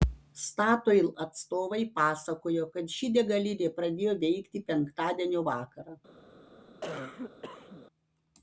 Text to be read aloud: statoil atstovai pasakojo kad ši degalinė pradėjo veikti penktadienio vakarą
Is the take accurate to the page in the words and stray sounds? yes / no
no